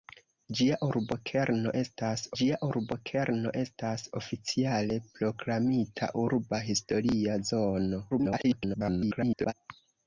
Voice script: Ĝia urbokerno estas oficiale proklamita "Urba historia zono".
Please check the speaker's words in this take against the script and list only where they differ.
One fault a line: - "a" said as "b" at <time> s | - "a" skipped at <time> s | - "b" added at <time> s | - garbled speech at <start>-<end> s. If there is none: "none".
- "ĝia urbokerno estas" added at 2.4 s
- garbled speech at 8.1-9.5 s